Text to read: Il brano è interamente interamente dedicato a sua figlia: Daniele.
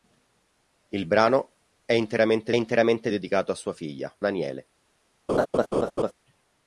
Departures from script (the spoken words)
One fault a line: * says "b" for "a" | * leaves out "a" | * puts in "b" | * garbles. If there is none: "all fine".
all fine